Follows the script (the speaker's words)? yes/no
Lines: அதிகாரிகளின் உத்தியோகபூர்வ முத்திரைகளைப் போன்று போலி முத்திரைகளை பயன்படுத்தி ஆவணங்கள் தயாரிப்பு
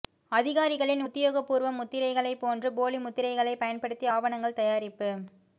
yes